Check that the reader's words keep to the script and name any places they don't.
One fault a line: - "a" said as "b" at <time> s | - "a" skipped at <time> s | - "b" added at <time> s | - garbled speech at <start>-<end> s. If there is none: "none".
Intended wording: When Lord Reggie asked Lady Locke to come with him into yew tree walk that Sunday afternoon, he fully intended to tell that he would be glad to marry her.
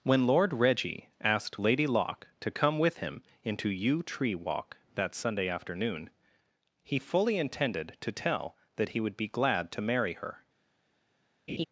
none